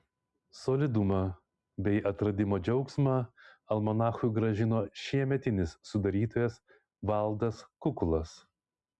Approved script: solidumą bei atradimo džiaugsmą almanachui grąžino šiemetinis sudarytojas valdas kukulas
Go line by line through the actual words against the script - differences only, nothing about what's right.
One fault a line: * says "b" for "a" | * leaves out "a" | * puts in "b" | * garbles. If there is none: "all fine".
all fine